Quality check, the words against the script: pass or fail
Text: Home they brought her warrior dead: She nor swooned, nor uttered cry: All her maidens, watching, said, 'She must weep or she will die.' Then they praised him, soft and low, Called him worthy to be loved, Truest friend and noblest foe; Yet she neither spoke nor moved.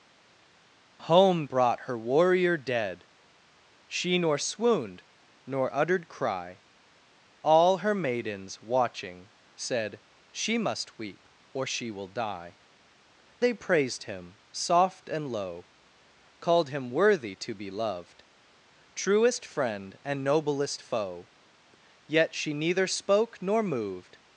fail